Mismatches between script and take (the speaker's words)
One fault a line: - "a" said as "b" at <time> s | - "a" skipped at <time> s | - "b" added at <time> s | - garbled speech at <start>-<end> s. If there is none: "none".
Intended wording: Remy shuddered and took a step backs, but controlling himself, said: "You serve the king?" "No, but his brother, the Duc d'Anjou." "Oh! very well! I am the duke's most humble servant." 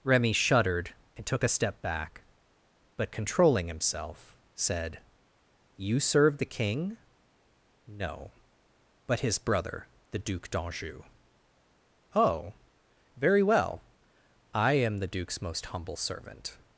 - "backs" said as "back" at 1.8 s